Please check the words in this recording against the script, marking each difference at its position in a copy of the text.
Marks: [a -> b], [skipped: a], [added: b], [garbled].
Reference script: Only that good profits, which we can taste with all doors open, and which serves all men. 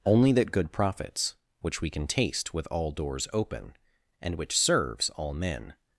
Only that good profits, which we can taste with all doors open, and which serves all men.